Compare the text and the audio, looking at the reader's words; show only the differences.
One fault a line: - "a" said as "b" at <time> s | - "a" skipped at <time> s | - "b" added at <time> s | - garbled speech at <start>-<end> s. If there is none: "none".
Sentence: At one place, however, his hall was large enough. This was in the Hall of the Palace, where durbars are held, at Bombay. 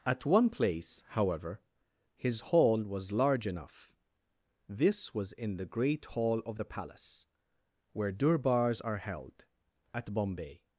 - "great" added at 5.7 s